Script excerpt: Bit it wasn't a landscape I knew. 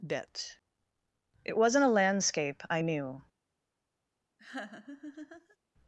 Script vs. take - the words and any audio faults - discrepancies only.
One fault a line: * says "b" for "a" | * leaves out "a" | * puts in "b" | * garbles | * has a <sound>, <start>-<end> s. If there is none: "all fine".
* has a laugh, 4.4-5.6 s